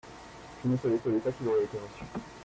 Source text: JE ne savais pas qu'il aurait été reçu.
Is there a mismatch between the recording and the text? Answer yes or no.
yes